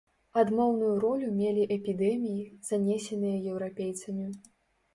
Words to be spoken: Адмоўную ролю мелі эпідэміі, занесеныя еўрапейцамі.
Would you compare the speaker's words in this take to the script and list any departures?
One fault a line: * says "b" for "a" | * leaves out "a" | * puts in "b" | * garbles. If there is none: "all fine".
all fine